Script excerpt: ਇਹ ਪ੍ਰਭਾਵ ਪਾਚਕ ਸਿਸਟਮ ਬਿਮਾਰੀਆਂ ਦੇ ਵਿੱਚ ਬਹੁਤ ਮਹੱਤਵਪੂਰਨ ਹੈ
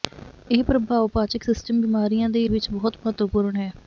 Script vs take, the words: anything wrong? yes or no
no